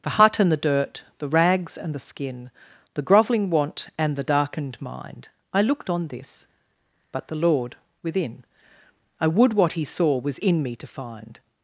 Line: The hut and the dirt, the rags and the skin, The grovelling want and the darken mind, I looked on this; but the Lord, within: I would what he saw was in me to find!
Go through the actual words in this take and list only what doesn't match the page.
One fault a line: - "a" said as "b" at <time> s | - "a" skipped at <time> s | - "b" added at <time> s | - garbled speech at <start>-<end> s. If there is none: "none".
- "darken" said as "darkened" at 4.2 s